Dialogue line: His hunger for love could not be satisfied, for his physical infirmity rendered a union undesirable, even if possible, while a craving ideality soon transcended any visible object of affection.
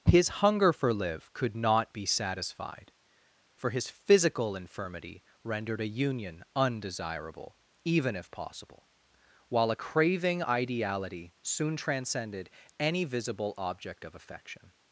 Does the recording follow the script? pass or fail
fail